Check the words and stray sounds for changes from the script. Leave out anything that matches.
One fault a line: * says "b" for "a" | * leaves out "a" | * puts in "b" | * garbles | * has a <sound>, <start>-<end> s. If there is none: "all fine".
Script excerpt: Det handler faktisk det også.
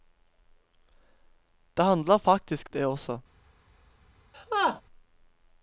* has a laugh, 4.3-4.8 s